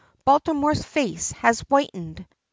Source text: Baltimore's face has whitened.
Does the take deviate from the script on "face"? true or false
false